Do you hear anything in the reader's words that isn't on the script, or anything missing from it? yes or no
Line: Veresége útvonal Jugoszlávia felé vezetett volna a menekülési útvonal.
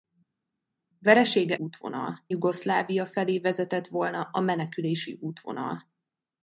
no